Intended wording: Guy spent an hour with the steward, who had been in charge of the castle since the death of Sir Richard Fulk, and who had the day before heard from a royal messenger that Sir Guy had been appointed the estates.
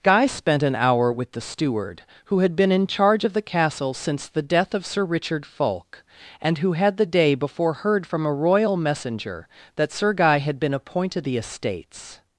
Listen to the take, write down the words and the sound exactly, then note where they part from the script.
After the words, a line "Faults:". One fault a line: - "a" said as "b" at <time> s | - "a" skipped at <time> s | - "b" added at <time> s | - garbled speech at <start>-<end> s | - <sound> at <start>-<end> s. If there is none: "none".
Guy spent an hour with the steward, who had been in charge of the castle since the death of Sir Richard Fulk, and who had the day before heard from a royal messenger that Sir Guy had been appointed the estates.
Faults:
none